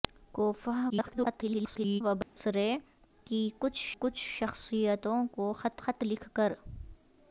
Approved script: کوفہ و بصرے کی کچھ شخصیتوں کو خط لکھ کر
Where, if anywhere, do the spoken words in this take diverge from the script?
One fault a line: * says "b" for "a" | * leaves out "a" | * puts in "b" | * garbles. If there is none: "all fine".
* garbles
* puts in "کچھ"
* puts in "خط"